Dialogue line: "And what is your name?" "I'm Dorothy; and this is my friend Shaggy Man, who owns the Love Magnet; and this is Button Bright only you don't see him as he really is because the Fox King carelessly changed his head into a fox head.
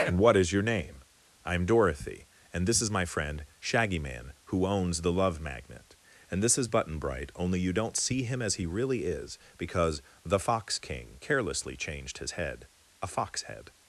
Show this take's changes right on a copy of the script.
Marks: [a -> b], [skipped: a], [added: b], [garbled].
"And what is your name?" "I'm Dorothy; and this is my friend Shaggy Man, who owns the Love Magnet; and this is Button Bright only you don't see him as he really is because the Fox King carelessly changed his head [skipped: into] a fox head.